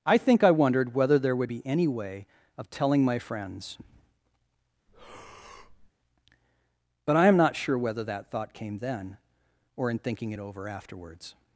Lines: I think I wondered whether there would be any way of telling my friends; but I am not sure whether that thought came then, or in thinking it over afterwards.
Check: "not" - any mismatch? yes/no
no